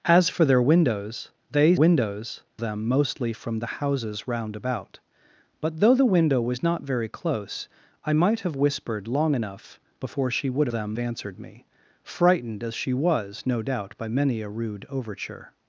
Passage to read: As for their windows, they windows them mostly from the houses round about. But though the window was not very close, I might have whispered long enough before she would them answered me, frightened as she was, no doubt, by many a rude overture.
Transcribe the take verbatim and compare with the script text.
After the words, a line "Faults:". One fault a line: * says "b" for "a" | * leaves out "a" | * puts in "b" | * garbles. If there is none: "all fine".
As for their windows, they windows them mostly from the houses round about. But though the window was not very close, I might have whispered long enough before she would them answered me, frightened as she was, no doubt, by many a rude overture.
Faults:
all fine